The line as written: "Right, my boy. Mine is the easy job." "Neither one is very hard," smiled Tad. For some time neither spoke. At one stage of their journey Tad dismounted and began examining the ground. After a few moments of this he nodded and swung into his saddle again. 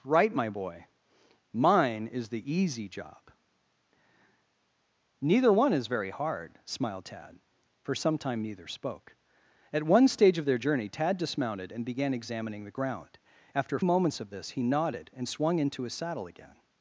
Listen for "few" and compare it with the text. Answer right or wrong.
wrong